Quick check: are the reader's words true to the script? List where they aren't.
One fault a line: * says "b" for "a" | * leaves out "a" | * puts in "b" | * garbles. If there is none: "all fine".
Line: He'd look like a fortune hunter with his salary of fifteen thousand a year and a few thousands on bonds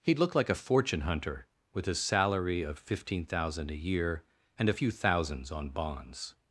all fine